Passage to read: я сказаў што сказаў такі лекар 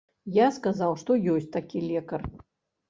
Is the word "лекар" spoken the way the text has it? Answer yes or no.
yes